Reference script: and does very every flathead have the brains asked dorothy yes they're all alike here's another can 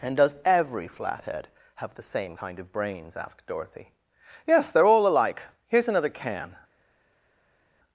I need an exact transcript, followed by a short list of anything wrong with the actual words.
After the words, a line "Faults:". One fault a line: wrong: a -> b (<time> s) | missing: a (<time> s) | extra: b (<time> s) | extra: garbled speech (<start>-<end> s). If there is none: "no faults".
and does every flathead have the same kind of brains asked dorothy yes they're all alike here's another can
Faults:
missing: very (0.3 s)
extra: same kind of (2.0 s)